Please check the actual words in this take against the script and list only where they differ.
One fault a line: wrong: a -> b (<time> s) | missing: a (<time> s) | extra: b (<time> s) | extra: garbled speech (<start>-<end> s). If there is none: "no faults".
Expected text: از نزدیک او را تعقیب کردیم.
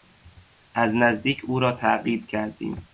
no faults